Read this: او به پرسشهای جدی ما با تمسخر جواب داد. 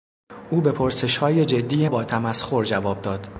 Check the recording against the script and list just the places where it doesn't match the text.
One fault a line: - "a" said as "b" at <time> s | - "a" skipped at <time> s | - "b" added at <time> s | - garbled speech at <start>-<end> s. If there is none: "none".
- "ما" skipped at 1.9 s